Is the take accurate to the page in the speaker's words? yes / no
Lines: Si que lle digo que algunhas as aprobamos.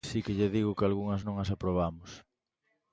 no